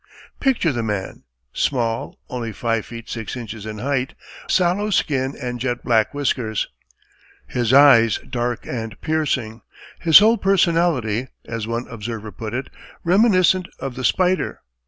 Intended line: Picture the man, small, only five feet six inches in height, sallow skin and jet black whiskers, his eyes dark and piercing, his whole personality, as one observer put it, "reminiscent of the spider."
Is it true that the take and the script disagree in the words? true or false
false